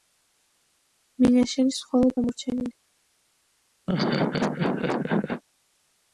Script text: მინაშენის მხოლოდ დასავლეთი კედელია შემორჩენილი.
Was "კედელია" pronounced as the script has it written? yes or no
no